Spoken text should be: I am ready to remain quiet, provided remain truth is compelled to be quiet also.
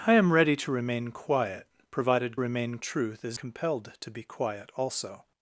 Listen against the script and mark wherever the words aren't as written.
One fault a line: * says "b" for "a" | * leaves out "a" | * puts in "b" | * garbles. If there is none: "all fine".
all fine